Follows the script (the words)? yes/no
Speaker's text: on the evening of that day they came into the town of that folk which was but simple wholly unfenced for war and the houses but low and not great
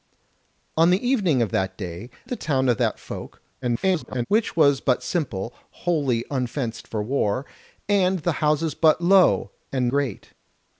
no